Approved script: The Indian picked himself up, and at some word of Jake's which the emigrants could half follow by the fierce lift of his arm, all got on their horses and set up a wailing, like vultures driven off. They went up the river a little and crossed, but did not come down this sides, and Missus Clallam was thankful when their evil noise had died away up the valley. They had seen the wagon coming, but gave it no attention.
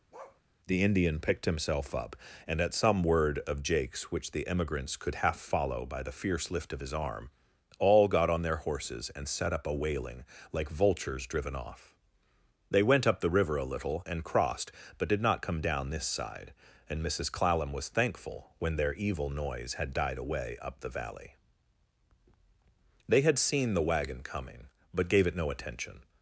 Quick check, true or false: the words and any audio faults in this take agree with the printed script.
false